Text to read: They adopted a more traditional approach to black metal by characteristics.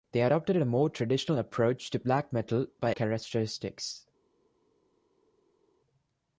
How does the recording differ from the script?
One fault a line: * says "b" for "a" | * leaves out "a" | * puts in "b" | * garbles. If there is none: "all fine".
all fine